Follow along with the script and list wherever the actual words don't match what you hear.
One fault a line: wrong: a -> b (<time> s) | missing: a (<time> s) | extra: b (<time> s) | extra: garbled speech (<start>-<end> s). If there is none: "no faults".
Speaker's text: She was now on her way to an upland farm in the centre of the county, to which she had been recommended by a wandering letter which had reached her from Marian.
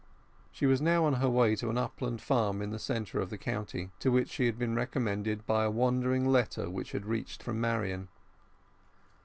missing: her (7.4 s)